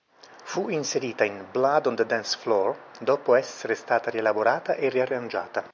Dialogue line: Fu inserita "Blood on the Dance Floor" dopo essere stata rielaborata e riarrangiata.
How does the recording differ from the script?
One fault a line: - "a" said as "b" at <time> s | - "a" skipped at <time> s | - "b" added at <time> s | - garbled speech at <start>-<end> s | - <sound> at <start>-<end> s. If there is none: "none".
- "in" added at 1.2 s